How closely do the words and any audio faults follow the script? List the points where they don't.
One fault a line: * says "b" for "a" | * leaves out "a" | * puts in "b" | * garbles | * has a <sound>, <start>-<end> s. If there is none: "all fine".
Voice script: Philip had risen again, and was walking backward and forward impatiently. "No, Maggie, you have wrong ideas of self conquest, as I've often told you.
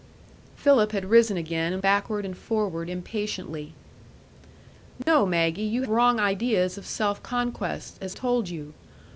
* leaves out "was walking"
* has a dropout, 5.0-5.1 s
* leaves out "have"
* leaves out "I've often"